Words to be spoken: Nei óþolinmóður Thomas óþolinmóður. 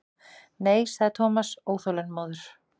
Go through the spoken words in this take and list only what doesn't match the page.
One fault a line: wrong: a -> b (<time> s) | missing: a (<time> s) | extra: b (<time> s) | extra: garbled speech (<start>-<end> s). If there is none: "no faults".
wrong: óþolinmóður -> sagði (0.9 s)